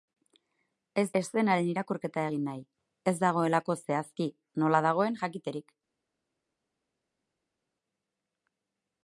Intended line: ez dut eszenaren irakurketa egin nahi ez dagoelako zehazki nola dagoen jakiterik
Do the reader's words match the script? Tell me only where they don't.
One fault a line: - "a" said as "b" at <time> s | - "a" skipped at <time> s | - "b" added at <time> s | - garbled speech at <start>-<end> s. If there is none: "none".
- "dut" skipped at 1.0 s